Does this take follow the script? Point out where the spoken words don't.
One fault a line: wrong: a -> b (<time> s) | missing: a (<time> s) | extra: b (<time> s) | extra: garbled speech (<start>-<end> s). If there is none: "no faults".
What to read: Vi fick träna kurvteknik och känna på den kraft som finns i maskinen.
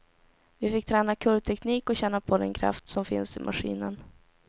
no faults